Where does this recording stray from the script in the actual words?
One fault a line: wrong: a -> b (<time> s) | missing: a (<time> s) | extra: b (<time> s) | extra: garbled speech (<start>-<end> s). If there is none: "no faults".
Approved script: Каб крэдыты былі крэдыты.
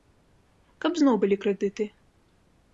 wrong: крэдыты -> зноў (1.0 s)